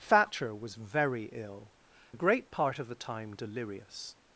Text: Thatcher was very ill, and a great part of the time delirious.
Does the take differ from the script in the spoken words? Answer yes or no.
yes